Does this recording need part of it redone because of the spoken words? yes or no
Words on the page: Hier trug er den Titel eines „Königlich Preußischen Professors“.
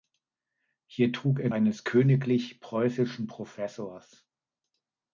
yes